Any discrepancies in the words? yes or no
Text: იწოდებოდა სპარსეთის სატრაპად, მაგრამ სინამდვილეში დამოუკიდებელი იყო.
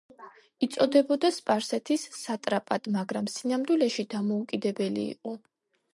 no